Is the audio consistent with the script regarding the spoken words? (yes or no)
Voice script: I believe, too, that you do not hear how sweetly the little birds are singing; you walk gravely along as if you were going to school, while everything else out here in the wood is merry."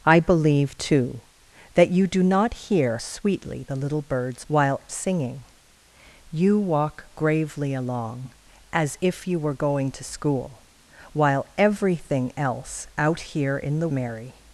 no